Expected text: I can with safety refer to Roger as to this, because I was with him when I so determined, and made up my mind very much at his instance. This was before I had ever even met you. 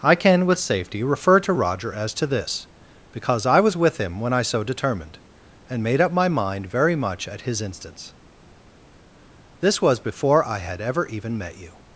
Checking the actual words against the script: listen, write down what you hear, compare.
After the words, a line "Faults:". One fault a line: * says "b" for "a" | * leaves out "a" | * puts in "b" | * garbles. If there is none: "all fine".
I can with safety refer to Roger as to this, because I was with him when I so determined, and made up my mind very much at his instance. This was before I had ever even met you.
Faults:
all fine